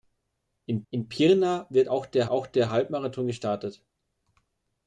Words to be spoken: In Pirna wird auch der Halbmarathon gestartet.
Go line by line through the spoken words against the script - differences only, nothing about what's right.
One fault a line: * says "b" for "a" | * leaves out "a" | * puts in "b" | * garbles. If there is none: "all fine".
* puts in "in"
* puts in "auch der"